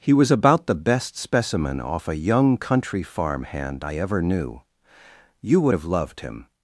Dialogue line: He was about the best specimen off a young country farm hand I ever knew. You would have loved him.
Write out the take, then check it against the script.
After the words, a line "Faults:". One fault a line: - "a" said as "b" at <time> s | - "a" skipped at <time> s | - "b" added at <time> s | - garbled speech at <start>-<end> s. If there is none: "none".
He was about the best specimen off a young country farm hand I ever knew. You would have loved him.
Faults:
none